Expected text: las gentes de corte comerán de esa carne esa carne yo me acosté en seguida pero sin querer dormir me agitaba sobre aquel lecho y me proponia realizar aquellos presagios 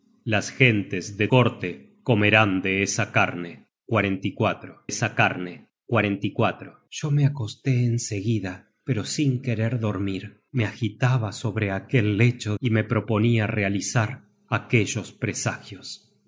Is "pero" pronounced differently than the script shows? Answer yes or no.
no